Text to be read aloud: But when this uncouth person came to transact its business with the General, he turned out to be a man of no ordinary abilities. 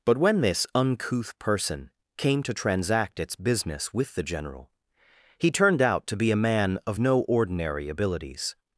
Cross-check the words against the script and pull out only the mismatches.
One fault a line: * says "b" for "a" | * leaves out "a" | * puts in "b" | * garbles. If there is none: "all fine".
all fine